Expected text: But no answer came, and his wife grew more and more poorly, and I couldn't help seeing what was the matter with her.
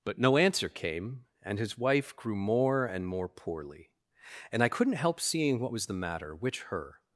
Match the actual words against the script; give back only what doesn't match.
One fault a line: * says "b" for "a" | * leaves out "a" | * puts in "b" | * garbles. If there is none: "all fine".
* says "which" for "with"